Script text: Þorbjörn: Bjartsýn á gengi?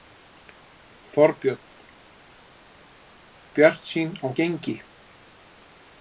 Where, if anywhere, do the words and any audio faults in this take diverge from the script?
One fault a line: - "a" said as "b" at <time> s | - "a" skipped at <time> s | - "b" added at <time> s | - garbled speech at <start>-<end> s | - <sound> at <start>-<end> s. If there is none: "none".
none